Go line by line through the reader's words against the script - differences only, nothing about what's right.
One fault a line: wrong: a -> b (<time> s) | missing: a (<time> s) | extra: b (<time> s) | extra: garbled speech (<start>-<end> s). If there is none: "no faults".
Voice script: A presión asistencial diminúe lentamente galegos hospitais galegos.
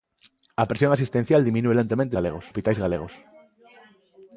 no faults